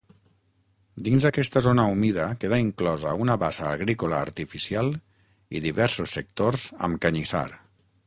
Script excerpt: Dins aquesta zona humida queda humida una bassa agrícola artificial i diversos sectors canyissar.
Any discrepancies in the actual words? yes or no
yes